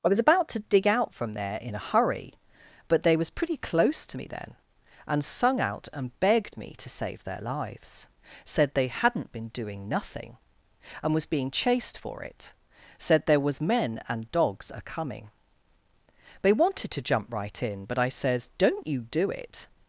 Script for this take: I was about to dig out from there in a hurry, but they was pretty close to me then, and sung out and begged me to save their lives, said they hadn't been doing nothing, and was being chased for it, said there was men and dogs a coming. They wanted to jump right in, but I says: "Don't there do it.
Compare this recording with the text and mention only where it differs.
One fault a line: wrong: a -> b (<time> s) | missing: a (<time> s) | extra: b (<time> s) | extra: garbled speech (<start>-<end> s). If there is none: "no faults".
wrong: there -> you (18.9 s)